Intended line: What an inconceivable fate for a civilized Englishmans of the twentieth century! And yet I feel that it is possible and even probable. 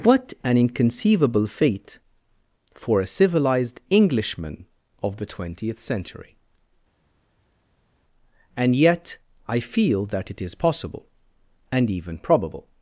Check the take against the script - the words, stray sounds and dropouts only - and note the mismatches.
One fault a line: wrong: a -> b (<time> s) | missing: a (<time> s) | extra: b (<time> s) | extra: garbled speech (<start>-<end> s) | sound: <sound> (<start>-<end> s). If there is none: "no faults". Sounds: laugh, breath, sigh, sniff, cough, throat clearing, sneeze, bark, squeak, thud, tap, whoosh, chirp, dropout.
wrong: Englishmans -> Englishman (3.9 s)